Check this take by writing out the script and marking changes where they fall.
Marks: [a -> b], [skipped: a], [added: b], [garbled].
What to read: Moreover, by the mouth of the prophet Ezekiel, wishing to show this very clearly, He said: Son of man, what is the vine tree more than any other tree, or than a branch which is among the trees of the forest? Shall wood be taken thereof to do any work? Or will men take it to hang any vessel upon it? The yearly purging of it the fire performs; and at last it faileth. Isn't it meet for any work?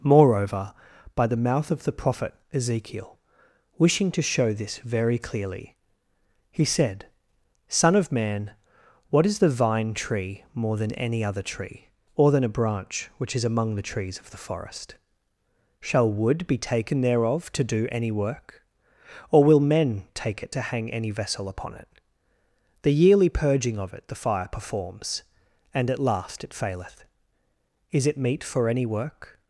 Moreover, by the mouth of the prophet Ezekiel, wishing to show this very clearly, He said: Son of man, what is the vine tree more than any other tree, or than a branch which is among the trees of the forest? Shall wood be taken thereof to do any work? Or will men take it to hang any vessel upon it? The yearly purging of it the fire performs; and at last it faileth. [Isn't -> Is] it meet for any work?